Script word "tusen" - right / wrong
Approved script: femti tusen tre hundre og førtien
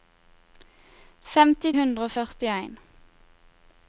wrong